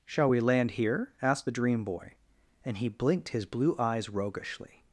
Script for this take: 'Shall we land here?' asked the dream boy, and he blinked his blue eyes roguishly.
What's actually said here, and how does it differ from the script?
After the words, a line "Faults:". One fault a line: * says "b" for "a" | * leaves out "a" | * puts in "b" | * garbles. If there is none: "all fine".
'Shall we land here?' asked the dream boy, and he blinked his blue eyes roguishly.
Faults:
all fine